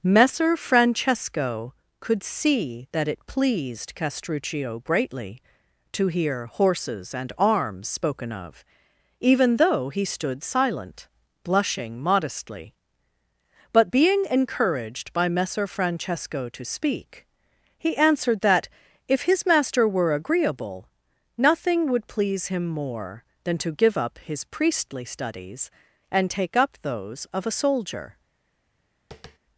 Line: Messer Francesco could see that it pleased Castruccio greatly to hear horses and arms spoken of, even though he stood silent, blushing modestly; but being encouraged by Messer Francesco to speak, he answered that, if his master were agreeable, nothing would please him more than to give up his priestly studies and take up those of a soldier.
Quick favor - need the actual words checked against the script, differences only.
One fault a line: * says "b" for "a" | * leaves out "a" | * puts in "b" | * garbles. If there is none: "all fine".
all fine